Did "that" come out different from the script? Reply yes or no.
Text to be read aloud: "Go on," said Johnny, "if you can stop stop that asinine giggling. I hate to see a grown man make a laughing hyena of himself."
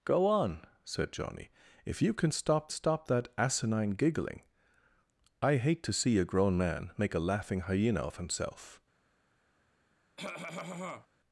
no